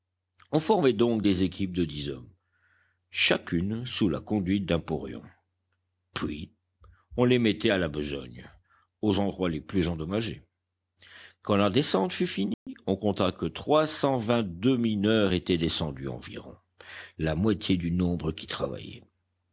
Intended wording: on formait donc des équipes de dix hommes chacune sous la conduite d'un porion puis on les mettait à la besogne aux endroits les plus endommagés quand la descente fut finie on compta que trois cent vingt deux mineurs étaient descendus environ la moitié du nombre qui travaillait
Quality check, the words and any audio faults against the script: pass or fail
fail